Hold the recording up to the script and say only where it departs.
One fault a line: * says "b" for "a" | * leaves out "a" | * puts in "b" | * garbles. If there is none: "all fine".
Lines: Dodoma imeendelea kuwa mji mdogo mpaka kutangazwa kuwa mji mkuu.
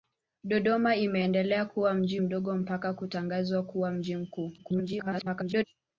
* garbles